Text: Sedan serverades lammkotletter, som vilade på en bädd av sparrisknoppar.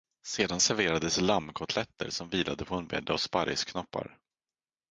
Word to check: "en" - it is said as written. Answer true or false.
true